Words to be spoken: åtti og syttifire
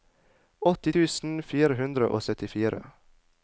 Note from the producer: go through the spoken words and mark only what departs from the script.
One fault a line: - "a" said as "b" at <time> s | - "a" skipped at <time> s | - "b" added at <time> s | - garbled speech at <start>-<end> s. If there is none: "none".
- "tusen fire hundre" added at 0.9 s